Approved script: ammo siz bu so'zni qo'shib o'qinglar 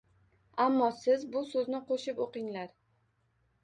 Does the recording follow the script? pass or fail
pass